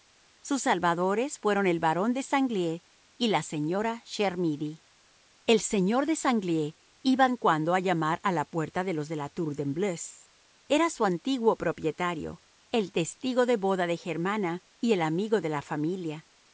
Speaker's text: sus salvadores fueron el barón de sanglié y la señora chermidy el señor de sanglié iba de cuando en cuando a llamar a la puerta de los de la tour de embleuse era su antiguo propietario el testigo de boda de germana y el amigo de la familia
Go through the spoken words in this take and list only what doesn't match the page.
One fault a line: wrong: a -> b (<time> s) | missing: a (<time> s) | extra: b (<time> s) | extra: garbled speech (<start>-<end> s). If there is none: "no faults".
missing: de cuando (7.3 s)